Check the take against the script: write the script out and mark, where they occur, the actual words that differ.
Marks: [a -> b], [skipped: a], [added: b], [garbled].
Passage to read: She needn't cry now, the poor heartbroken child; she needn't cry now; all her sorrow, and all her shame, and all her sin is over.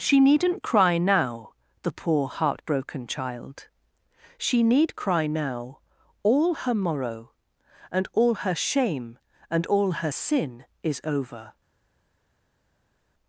She needn't cry now, the poor heartbroken child; she [needn't -> need] cry now; all her [sorrow, -> morrow] and all her shame, and all her sin is over.